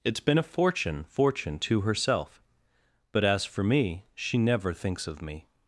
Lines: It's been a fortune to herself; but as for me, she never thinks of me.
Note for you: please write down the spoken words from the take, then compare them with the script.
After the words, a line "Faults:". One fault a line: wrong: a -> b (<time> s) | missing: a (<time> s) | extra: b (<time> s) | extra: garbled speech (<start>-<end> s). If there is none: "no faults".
It's been a fortune fortune to herself; but as for me, she never thinks of me.
Faults:
extra: fortune (1.1 s)